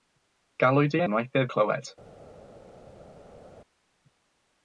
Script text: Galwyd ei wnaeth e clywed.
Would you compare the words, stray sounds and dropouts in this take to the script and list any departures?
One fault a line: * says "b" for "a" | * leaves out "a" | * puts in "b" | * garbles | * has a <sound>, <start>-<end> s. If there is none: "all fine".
all fine